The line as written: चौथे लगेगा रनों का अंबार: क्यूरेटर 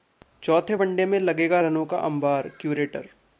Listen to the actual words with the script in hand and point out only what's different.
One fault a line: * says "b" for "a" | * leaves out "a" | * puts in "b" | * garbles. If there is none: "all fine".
* puts in "वनडे में"